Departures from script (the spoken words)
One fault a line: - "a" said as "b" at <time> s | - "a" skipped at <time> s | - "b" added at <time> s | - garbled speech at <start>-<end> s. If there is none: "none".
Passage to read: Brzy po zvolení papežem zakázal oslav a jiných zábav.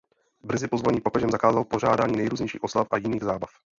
- "pořádání nejrůznějších" added at 1.6 s